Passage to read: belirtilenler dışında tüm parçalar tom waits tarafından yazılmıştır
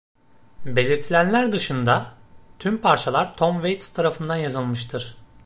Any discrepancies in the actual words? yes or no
no